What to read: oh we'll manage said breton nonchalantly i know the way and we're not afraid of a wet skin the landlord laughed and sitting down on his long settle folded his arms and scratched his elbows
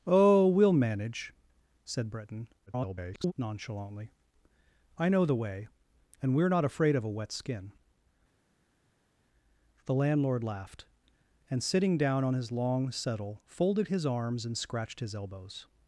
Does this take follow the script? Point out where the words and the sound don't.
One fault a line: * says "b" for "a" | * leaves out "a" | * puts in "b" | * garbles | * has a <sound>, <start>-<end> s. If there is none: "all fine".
* garbles